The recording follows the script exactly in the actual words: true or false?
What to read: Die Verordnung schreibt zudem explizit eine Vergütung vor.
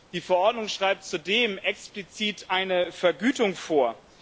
true